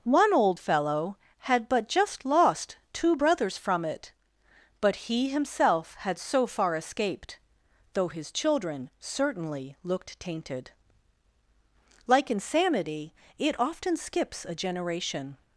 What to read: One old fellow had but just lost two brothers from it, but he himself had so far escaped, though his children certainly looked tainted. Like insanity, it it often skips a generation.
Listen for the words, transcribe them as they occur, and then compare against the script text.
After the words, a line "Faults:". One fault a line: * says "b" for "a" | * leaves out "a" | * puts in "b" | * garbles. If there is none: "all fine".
One old fellow had but just lost two brothers from it, but he himself had so far escaped, though his children certainly looked tainted. Like insanity, it often skips a generation.
Faults:
* leaves out "it"